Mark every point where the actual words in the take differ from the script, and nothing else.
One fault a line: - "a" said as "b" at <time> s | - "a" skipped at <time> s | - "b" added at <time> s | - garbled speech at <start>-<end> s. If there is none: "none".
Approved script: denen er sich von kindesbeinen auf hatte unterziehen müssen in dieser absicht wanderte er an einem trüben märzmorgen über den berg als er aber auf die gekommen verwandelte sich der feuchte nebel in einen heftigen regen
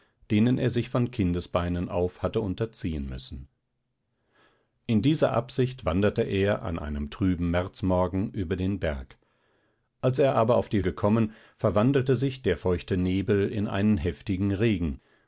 none